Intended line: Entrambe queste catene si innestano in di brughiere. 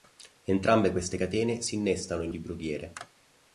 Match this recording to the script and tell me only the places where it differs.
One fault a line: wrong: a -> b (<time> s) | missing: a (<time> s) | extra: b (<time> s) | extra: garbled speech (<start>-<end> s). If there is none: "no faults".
no faults